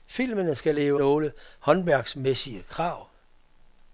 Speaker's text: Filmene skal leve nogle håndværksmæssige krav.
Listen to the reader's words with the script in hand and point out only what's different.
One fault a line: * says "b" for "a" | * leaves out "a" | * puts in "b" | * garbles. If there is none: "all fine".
all fine